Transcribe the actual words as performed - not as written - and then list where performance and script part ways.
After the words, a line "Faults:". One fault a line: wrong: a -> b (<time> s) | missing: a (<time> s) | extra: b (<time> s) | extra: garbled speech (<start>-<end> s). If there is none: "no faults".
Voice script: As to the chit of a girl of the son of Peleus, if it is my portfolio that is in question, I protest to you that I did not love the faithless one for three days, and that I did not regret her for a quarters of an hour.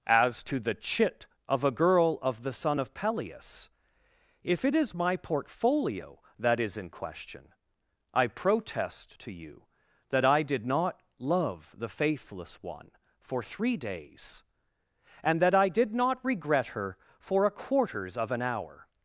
As to the chit of a girl of the son of Peleus, if it is my portfolio that is in question, I protest to you that I did not love the faithless one for three days, and that I did not regret her for a quarters of an hour.
Faults:
no faults